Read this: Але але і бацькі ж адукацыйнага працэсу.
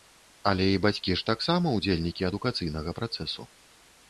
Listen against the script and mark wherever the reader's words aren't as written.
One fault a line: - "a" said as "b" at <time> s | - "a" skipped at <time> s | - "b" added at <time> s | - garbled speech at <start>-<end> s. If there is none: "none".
- "але" skipped at 0.7 s
- "таксама ўдзельнікі" added at 1.3 s